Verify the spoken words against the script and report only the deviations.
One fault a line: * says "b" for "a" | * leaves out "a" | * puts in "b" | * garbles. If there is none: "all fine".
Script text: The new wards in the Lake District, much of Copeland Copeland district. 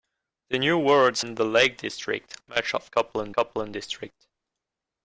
all fine